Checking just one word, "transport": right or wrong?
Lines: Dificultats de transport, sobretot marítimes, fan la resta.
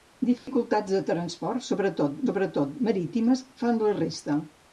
right